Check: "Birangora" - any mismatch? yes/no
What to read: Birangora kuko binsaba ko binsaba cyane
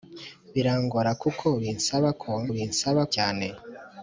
no